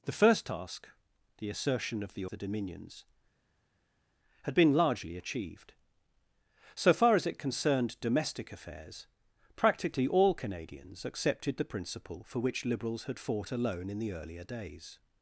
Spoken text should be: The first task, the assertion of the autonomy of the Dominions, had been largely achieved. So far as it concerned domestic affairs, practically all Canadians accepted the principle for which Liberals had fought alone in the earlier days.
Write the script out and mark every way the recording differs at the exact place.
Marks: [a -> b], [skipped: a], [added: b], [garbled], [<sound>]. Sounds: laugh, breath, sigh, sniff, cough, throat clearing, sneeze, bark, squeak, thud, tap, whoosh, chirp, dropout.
The first task, the assertion of the [skipped: autonomy of] the Dominions, had been largely achieved. So far as it concerned domestic affairs, practically all Canadians accepted the principle for which Liberals had fought alone in the earlier days.